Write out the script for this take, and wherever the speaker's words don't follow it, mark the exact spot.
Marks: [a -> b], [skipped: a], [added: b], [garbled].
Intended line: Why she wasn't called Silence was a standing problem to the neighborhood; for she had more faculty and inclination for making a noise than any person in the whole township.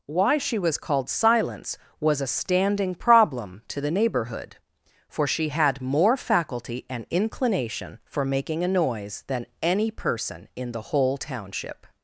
Why she [wasn't -> was] called Silence was a standing problem to the neighborhood; for she had more faculty and inclination for making a noise than any person in the whole township.